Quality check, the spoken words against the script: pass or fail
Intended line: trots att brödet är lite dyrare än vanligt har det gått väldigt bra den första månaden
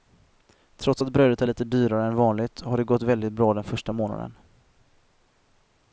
pass